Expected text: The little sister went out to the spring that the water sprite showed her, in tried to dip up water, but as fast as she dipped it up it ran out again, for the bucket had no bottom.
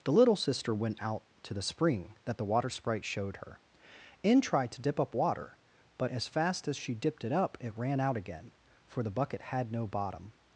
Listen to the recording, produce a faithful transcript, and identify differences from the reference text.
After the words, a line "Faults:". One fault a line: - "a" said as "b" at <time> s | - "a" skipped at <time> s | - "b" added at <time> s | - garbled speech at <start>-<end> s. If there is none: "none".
The little sister went out to the spring that the water sprite showed her, in tried to dip up water, but as fast as she dipped it up it ran out again, for the bucket had no bottom.
Faults:
none